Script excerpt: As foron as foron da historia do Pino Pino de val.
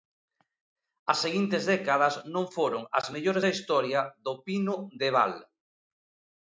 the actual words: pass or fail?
fail